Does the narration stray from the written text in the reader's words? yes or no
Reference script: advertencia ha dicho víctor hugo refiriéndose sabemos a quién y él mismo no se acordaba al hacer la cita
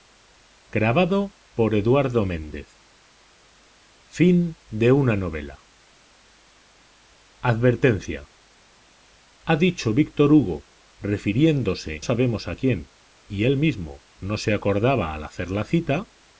no